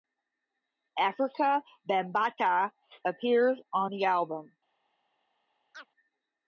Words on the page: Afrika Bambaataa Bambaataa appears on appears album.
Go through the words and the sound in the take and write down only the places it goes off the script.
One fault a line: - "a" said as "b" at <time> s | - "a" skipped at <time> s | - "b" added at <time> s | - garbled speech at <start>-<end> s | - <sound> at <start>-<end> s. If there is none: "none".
- "Bambaataa" skipped at 2.7 s
- "appears" said as "the" at 3.9 s
- chirp at 5.7-5.9 s